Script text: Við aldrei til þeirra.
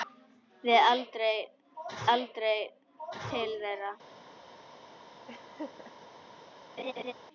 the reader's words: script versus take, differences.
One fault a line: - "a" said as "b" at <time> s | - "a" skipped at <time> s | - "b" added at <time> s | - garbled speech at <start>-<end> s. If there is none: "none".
- "aldrei" added at 2.1 s